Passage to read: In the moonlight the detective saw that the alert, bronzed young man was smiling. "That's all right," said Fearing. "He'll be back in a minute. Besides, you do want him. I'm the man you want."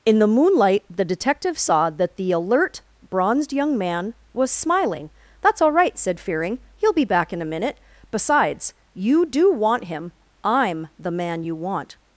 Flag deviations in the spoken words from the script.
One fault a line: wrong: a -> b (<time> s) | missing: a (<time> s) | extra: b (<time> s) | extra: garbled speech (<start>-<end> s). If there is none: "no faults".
no faults